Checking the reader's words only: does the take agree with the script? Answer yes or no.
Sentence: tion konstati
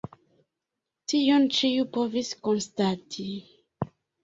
no